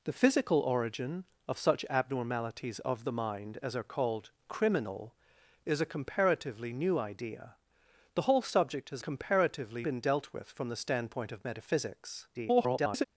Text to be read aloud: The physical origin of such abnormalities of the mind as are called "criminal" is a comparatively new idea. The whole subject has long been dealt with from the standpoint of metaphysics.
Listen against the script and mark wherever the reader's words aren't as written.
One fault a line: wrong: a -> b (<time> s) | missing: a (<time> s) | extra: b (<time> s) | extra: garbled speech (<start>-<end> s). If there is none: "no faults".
wrong: long -> comparatively (9.0 s)
extra: garbled speech (12.3-13.0 s)